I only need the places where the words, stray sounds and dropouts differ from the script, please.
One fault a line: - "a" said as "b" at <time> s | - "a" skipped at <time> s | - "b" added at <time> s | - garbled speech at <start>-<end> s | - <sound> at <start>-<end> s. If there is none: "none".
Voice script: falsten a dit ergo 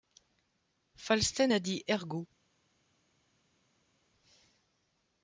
none